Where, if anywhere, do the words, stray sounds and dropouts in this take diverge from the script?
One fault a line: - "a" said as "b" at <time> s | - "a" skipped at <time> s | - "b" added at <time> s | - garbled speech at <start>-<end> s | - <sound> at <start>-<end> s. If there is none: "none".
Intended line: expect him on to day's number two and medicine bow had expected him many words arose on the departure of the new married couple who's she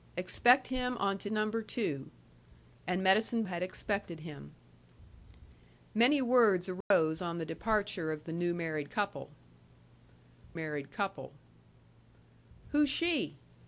- "day's" skipped at 1.3 s
- "bow" skipped at 3.4 s
- dropout at 6.8-6.9 s
- "married couple" added at 10.5 s